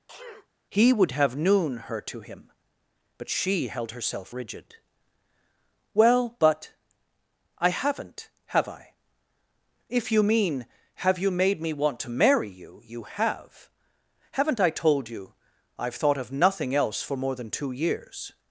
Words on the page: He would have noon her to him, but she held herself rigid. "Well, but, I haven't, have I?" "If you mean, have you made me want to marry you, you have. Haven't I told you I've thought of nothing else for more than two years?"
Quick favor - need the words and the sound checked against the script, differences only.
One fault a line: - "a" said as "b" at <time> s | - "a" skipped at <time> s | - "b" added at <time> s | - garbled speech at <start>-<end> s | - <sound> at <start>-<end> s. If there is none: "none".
- sneeze at 0.1-0.5 s